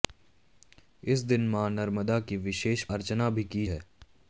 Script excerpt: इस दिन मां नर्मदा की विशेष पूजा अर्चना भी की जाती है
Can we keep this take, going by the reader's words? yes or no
no